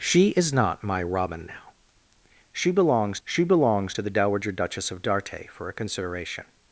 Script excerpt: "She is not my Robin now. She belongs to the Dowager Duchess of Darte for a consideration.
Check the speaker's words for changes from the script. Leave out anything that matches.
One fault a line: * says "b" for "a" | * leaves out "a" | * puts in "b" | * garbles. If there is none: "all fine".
* puts in "she belongs"